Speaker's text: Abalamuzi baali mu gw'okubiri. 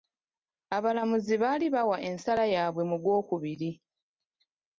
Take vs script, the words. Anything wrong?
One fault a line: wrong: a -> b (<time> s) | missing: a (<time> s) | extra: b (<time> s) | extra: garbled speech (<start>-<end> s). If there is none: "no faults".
extra: bawa ensala yaabwe (1.8 s)